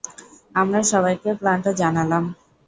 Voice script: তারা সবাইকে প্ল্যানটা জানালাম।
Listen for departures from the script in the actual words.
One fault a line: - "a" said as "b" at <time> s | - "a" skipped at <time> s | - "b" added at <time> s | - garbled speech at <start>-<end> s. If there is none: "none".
- "তারা" said as "আমরা" at 0.6 s